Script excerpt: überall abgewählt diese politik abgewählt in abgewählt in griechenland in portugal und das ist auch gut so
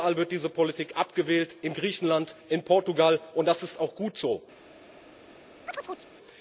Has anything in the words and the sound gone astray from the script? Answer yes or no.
yes